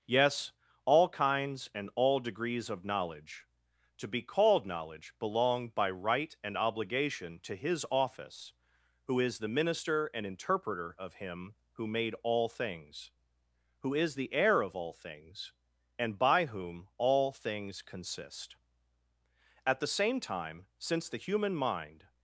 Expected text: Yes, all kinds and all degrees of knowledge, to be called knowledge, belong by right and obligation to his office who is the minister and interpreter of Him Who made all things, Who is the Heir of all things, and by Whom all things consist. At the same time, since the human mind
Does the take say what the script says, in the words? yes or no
yes